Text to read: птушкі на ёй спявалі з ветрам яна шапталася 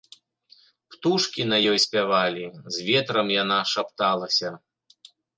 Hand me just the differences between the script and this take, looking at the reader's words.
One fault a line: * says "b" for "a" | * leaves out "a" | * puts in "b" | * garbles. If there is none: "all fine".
all fine